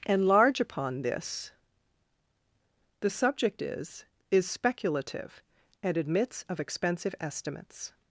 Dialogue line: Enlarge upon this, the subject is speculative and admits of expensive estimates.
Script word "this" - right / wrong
right